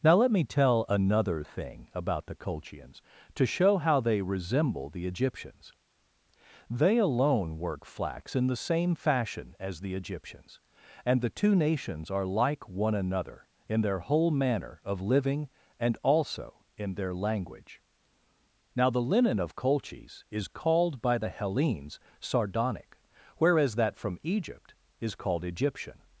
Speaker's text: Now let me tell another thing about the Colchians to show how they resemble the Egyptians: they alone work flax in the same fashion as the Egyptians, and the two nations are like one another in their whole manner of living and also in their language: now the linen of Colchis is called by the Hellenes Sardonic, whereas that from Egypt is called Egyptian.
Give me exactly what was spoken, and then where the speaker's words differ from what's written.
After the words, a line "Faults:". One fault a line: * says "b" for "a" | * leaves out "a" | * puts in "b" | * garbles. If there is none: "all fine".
Now let me tell another thing about the Colchians to show how they resemble the Egyptians: they alone work flax in the same fashion as the Egyptians, and the two nations are like one another in their whole manner of living and also in their language: now the linen of Colchis is called by the Hellenes Sardonic, whereas that from Egypt is called Egyptian.
Faults:
all fine